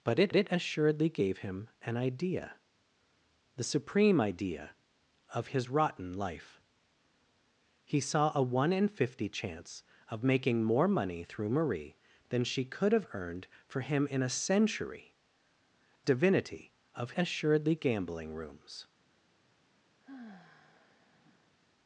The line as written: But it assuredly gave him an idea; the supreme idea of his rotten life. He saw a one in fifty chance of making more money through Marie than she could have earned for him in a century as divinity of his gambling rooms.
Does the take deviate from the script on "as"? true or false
true